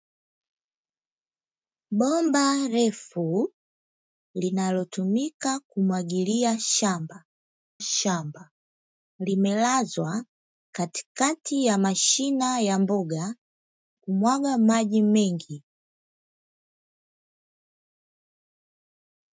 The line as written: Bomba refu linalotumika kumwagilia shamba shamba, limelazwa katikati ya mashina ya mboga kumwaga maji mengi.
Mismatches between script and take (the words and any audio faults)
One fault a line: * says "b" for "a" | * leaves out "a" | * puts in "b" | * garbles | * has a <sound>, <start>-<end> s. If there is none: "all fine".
all fine